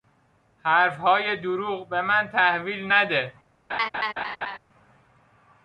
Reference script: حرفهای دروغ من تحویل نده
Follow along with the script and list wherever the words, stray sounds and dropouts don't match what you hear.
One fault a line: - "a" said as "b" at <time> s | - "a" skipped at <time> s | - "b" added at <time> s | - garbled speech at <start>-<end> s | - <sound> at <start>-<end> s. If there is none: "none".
- "به" added at 1.9 s
- laugh at 3.7-4.6 s